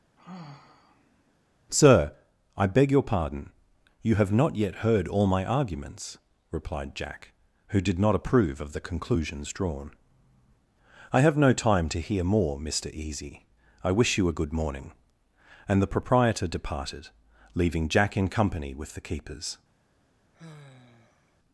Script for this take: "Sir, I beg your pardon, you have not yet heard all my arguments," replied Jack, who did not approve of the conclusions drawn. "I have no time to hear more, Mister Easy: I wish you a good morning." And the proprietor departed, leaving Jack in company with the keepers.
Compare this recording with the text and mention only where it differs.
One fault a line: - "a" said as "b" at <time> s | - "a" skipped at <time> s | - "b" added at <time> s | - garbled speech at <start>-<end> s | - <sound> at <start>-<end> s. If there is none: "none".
- sigh at 0.2-1.3 s
- sigh at 20.3-21.4 s